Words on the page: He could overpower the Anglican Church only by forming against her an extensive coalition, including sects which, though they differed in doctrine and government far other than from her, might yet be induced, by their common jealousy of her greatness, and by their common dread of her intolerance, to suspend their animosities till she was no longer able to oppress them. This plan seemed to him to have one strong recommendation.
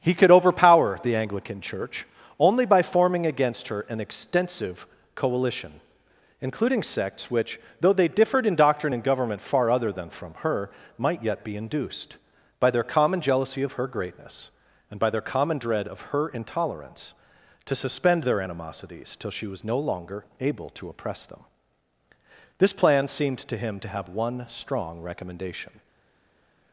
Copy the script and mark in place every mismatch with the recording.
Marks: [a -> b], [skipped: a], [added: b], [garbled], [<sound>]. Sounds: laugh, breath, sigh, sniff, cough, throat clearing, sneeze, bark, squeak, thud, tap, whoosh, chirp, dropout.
He could overpower the Anglican Church only by forming against her an extensive coalition, including sects which, though they differed in doctrine and government far other than from her, might yet be induced, by their common jealousy of her greatness, and by their common dread of her intolerance, to suspend their animosities till she was no longer able to oppress them. This plan seemed to him to have one strong recommendation.